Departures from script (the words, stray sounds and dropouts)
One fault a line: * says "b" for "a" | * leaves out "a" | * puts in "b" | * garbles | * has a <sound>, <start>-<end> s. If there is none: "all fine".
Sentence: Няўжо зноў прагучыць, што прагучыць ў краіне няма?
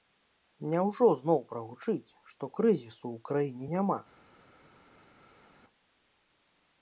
* says "крызісу" for "прагучыць"